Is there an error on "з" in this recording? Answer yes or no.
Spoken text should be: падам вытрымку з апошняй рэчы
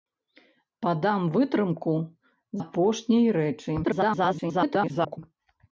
yes